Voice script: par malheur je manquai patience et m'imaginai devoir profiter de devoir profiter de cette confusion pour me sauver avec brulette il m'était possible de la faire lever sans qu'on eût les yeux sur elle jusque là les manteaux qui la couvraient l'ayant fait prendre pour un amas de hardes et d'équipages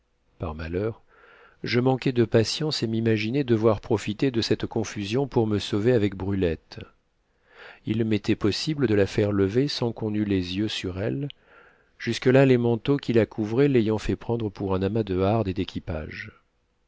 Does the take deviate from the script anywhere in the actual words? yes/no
yes